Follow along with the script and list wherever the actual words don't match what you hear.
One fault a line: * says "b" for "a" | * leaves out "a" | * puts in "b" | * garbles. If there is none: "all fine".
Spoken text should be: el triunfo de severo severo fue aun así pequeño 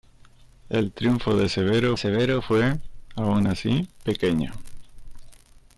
all fine